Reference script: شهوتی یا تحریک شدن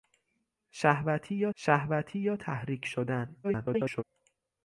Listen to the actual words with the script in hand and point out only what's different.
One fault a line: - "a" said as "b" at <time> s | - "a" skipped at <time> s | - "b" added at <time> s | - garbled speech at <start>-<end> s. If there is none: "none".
- "شهوتی یا" added at 1.5 s
- garbled speech at 3.4-4.0 s